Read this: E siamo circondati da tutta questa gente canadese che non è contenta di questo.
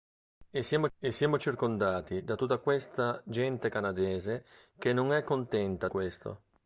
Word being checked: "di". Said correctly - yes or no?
no